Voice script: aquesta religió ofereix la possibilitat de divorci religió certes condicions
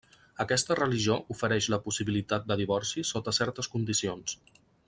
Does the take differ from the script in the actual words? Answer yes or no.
yes